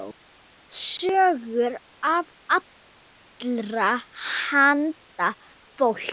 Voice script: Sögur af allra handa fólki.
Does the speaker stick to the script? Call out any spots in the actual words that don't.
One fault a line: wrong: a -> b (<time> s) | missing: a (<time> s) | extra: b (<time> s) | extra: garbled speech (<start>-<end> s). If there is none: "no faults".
no faults